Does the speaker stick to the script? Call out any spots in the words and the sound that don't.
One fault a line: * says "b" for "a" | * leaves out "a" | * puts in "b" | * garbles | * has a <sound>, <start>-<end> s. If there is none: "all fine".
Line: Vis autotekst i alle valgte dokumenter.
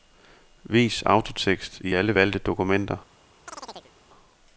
* has a chirp, 3.5-3.9 s